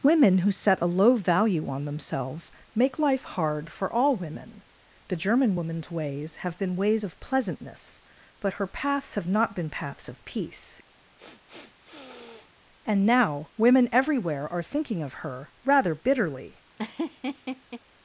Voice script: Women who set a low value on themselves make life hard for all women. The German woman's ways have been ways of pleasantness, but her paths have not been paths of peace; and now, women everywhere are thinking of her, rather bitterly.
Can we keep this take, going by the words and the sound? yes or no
no